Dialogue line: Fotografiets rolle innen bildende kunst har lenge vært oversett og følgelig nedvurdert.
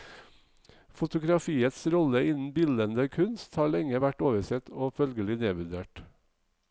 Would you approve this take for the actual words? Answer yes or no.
yes